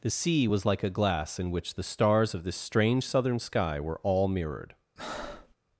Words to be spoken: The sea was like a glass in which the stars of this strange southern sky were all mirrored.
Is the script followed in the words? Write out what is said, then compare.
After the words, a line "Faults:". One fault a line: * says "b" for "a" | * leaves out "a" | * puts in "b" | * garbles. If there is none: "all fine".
The sea was like a glass in which the stars of this strange southern sky were all mirrored.
Faults:
all fine